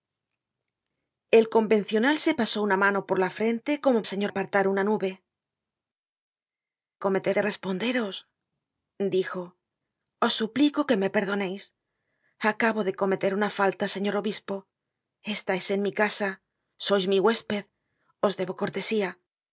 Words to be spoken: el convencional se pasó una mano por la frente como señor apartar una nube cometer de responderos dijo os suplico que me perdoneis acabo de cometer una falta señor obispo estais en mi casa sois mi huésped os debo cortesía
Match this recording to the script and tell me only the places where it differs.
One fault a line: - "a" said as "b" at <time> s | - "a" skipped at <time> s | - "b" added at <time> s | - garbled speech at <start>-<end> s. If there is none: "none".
none